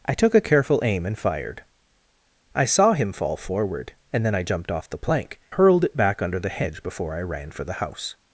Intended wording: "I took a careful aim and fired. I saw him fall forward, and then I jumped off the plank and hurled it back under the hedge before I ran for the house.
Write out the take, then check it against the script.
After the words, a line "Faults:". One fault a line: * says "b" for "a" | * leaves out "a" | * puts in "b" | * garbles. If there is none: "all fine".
"I took a careful aim and fired. I saw him fall forward, and then I jumped off the plank hurled it back under the hedge before I ran for the house.
Faults:
* leaves out "and"